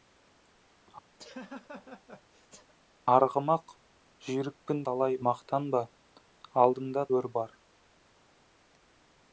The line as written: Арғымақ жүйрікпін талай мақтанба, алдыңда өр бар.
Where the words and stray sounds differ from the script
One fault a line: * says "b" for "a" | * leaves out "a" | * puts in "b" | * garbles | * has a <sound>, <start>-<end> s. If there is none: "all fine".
* has a laugh, 1.2-2.7 s